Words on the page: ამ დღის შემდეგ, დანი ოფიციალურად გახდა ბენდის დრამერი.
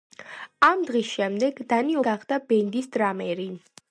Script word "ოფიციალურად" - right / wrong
wrong